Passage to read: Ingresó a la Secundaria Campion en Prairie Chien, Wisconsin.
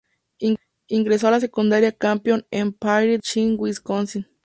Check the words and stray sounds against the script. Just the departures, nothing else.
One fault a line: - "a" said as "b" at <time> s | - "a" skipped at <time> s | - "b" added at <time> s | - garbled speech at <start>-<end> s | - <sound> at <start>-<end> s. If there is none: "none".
none